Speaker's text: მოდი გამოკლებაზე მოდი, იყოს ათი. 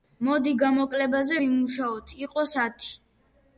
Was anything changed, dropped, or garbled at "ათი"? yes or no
no